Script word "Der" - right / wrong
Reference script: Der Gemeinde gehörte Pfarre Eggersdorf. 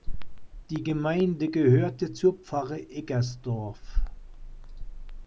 wrong